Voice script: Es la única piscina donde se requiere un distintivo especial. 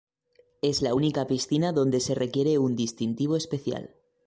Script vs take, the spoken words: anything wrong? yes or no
no